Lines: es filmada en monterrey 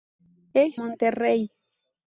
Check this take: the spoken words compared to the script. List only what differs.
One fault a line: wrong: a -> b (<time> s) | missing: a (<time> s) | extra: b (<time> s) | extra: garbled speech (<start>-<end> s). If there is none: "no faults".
missing: filmada en (0.8 s)